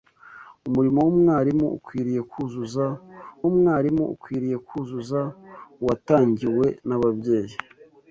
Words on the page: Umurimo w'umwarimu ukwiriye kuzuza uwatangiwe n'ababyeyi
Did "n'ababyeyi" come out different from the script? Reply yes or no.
no